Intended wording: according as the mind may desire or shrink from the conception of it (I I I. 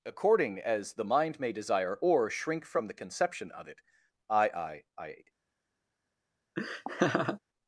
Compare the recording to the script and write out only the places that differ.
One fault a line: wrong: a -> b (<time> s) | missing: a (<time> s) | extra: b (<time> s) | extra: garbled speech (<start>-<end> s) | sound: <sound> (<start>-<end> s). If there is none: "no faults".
sound: laugh (6.6-7.4 s)